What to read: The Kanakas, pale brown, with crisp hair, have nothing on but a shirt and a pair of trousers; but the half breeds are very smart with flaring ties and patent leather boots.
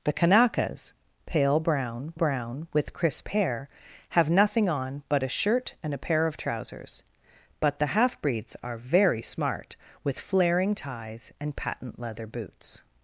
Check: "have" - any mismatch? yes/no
no